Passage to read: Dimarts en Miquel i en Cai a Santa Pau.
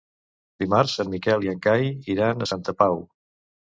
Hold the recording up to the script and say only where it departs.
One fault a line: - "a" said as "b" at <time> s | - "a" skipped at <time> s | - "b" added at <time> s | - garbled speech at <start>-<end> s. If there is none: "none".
- "iran" added at 2.1 s